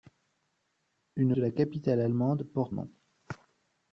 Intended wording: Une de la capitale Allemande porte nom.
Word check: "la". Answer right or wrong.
right